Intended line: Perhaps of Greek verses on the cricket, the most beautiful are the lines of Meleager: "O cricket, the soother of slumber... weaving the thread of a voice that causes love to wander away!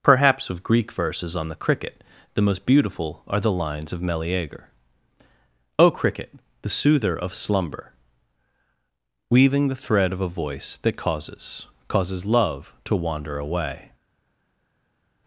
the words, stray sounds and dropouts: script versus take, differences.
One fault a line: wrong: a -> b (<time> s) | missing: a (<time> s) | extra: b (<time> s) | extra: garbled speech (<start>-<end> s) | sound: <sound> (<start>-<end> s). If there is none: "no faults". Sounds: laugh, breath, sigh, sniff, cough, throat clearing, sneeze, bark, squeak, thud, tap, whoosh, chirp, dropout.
extra: causes (11.9 s)